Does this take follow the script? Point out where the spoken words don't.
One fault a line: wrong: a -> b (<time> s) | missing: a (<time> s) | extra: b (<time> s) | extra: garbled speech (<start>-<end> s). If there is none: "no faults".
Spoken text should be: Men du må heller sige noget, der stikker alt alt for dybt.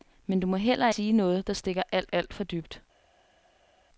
no faults